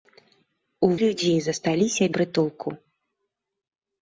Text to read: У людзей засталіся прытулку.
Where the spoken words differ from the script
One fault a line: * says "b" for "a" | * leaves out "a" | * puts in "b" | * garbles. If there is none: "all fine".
all fine